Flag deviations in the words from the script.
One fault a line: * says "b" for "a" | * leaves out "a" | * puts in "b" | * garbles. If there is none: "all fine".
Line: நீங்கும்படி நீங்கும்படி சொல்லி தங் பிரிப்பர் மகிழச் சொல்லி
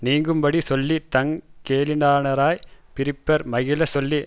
* leaves out "நீங்கும்படி"
* puts in "கேளிரானாரைப்"